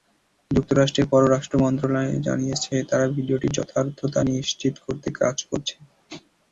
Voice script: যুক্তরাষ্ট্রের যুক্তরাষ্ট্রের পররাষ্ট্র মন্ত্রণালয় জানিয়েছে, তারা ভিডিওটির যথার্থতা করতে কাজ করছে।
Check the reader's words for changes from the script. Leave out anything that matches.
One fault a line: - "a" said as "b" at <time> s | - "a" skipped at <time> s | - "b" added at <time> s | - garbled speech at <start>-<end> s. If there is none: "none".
- "যুক্তরাষ্ট্রের" skipped at 1.1 s
- "নিশ্চিত" added at 4.3 s